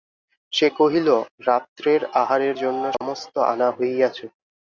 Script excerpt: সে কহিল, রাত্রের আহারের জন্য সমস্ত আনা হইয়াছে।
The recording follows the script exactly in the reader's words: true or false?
true